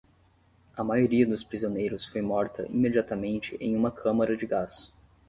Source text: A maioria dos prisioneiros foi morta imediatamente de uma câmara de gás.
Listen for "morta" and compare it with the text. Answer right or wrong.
right